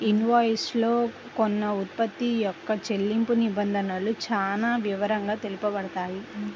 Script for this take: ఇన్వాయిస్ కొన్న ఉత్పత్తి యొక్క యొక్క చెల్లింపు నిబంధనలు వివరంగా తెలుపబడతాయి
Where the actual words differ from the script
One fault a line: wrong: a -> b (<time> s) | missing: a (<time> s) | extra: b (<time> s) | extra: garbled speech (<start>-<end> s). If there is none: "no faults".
extra: లో (0.8 s)
missing: యొక్క (2.7 s)
extra: చానా (4.3 s)